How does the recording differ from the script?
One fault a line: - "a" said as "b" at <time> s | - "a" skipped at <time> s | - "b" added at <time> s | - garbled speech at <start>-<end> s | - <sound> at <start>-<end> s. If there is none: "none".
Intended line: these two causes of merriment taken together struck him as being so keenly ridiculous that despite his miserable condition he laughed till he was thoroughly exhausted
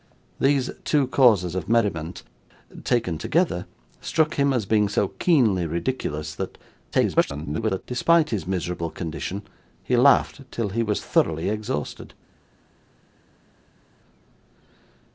- garbled speech at 6.9-7.8 s